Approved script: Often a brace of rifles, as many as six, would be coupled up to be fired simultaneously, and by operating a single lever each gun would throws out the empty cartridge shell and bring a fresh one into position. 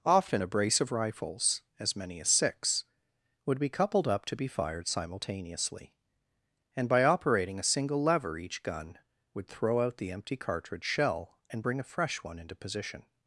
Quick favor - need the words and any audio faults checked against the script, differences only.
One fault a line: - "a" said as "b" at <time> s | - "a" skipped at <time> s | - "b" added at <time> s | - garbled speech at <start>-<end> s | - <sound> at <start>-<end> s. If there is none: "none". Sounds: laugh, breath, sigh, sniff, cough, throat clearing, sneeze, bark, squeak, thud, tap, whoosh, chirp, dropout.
- "throws" said as "throw" at 9.5 s